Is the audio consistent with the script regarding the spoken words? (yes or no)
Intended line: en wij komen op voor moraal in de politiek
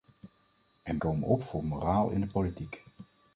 no